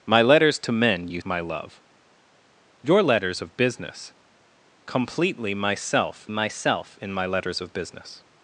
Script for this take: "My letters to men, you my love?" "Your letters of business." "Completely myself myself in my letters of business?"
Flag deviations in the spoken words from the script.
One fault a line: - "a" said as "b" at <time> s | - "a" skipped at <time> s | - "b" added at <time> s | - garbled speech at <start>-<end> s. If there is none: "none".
none